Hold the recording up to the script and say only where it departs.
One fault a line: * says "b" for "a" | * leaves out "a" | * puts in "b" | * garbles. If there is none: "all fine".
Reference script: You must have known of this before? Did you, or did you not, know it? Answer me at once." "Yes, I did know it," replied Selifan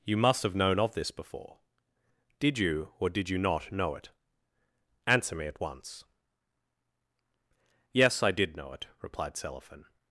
all fine